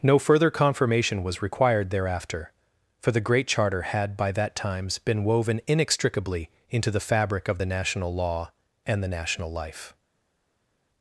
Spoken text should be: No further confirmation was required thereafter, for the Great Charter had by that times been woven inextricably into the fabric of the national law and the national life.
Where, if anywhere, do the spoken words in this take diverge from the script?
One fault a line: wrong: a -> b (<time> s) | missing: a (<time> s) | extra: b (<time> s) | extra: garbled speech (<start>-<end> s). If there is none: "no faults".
no faults